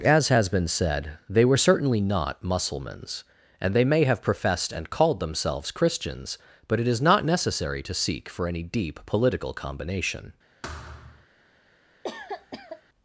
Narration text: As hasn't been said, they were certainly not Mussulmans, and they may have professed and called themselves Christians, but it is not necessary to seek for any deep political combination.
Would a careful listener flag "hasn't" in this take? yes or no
yes